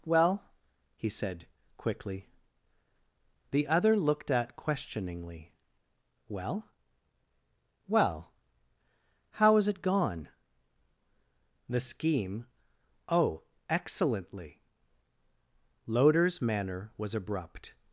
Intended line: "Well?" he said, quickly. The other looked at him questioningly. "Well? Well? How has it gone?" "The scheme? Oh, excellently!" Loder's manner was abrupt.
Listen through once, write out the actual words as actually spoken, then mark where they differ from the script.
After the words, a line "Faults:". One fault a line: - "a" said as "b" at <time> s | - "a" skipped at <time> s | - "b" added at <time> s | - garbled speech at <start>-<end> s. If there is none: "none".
"Well?" he said, quickly. The other looked at questioningly. "Well? Well? How has it gone?" "The scheme? Oh, excellently!" Loder's manner was abrupt.
Faults:
- "him" skipped at 4.6 s